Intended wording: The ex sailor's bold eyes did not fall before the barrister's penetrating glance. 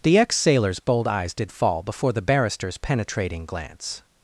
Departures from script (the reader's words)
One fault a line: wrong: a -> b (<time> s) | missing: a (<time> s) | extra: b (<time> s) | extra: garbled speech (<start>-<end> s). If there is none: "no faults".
missing: not (1.5 s)